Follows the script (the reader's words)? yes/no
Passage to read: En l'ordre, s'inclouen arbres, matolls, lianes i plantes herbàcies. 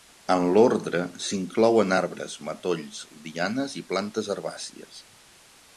yes